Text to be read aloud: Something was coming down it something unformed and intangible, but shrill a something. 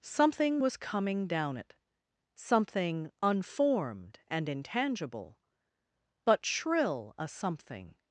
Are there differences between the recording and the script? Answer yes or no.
no